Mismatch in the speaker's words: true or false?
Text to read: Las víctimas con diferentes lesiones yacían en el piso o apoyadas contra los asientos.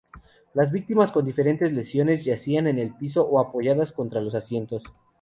false